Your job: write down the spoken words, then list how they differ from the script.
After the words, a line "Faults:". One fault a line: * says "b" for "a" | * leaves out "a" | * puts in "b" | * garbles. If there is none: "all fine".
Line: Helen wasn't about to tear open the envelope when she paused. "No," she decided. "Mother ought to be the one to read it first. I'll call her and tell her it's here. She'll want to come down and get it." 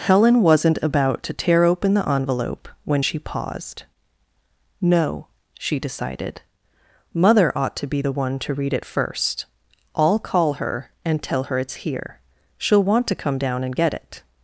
Helen wasn't about to tear open the envelope when she paused. "No," she decided. "Mother ought to be the one to read it first. I'll call her and tell her it's here. She'll want to come down and get it."
Faults:
all fine